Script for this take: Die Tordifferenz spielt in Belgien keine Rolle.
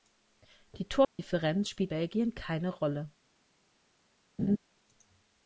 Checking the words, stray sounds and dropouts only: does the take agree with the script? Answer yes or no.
no